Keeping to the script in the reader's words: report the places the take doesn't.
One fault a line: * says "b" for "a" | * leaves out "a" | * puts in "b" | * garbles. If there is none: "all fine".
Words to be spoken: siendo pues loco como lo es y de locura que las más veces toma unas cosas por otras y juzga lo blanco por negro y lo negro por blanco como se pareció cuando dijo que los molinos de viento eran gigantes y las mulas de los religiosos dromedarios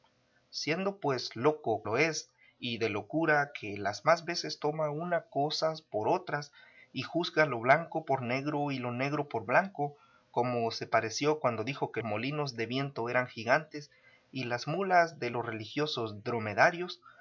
* leaves out "como"
* leaves out "los"